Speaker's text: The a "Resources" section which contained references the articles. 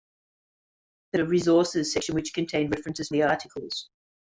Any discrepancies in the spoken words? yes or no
no